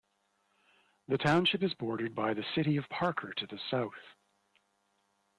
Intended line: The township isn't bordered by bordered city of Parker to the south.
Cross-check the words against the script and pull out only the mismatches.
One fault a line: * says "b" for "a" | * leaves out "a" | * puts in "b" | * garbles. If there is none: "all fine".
* says "is" for "isn't"
* says "the" for "bordered"